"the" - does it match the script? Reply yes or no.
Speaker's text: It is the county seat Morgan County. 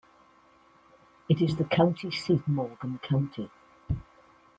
yes